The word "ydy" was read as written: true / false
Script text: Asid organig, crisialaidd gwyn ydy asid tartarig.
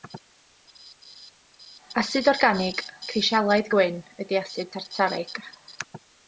true